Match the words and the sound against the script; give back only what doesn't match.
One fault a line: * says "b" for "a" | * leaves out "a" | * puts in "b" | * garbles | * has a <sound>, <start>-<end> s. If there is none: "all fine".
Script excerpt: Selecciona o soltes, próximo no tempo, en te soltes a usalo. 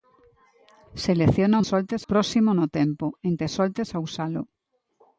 all fine